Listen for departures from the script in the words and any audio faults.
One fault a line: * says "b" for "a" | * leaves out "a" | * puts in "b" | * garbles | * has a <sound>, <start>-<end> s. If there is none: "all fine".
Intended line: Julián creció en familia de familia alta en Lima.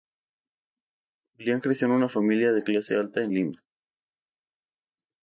* puts in "una"
* says "clase" for "familia"